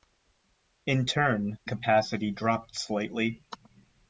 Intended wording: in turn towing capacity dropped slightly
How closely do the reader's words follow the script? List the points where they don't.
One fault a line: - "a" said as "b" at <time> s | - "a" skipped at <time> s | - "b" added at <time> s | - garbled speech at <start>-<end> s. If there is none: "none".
- "towing" skipped at 1.6 s